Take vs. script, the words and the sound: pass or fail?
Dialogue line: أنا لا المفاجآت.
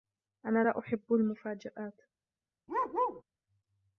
fail